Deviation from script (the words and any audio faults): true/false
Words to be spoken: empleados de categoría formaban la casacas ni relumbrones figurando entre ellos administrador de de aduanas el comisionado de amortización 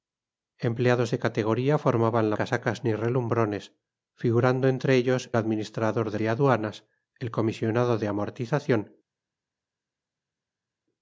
false